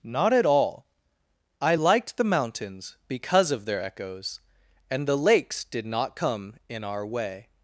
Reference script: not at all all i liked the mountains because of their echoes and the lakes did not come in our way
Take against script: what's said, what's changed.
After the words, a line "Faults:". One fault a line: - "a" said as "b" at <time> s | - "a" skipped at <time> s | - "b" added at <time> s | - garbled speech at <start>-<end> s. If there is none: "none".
not at all i liked the mountains because of their echoes and the lakes did not come in our way
Faults:
- "all" skipped at 0.9 s